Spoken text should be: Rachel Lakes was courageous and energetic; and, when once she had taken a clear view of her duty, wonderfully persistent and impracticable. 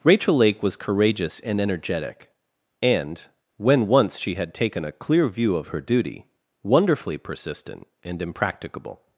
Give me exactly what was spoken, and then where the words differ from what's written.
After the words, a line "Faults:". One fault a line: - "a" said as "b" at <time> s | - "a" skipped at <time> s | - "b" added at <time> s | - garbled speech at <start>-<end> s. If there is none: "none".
Rachel Lake was courageous and energetic; and, when once she had taken a clear view of her duty, wonderfully persistent and impracticable.
Faults:
- "Lakes" said as "Lake" at 0.3 s